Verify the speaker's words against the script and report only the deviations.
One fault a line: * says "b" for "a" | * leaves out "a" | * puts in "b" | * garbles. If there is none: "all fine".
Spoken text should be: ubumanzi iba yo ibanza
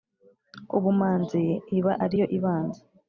* puts in "ari"